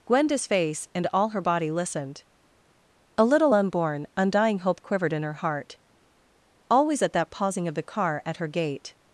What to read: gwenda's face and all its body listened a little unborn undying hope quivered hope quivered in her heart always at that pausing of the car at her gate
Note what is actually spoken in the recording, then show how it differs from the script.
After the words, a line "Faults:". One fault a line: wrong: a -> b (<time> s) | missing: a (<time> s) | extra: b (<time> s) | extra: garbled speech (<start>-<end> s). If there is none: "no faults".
gwenda's face and all her body listened a little unborn undying hope quivered in her heart always at that pausing of the car at her gate
Faults:
wrong: its -> her (1.3 s)
missing: hope quivered (5.1 s)